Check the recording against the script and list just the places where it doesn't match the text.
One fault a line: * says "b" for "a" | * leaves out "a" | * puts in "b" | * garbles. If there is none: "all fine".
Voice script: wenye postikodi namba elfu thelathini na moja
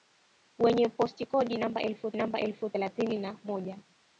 * puts in "namba elfu"